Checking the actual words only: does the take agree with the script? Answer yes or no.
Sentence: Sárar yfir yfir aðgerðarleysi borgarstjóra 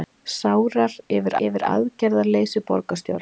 yes